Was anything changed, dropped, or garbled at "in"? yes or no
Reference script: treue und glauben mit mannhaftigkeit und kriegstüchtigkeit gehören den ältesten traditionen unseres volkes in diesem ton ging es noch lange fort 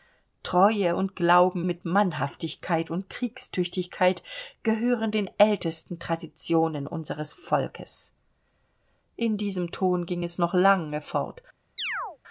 no